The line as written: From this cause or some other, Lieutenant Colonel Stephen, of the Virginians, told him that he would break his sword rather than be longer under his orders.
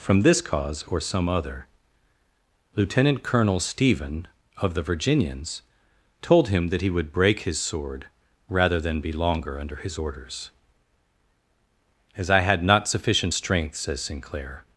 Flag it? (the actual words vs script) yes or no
yes